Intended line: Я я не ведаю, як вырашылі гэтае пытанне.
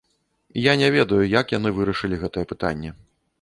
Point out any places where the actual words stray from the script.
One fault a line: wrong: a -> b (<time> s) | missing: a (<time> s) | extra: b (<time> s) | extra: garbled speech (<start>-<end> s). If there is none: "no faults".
missing: я (0.7 s)
extra: яны (1.6 s)